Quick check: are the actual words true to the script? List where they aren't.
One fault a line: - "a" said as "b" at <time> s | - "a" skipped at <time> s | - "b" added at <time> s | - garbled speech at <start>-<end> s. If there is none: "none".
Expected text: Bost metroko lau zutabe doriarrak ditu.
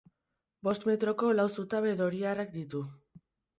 none